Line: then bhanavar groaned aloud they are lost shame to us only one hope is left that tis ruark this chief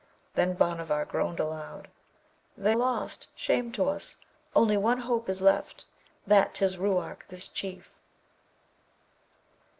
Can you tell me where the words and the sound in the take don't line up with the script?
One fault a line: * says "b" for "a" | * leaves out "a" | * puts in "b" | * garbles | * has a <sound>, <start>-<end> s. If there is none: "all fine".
* leaves out "are"